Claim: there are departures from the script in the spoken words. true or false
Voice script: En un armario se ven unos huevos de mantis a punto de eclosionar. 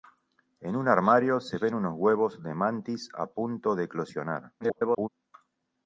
true